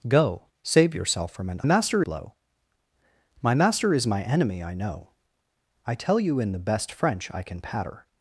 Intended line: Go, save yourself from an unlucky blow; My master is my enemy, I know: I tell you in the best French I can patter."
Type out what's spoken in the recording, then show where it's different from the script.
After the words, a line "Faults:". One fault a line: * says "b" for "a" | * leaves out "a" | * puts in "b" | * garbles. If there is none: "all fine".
Go, save yourself from an master blow; My master is my enemy, I know: I tell you in the best French I can patter."
Faults:
* says "master" for "unlucky"